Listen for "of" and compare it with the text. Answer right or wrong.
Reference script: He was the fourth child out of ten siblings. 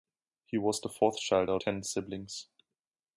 wrong